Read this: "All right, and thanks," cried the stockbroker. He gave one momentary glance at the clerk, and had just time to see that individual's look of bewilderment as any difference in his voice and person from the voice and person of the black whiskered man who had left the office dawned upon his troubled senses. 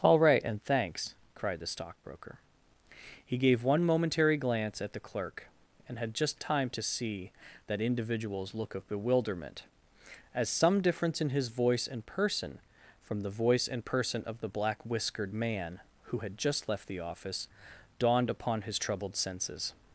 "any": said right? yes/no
no